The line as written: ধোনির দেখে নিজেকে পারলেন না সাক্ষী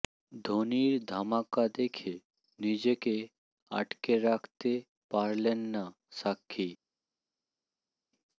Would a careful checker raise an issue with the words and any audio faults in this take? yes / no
yes